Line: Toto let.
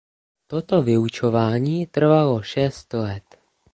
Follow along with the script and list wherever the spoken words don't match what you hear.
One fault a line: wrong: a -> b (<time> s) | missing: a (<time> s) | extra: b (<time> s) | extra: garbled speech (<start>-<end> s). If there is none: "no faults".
extra: vyučování trvalo šest (0.8 s)